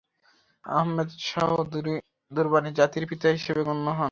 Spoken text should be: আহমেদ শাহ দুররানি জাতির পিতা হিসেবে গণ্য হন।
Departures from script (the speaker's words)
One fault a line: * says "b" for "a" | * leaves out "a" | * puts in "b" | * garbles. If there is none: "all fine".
all fine